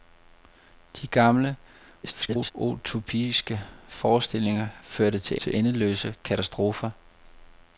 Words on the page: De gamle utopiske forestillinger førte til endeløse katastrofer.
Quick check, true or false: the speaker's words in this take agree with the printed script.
false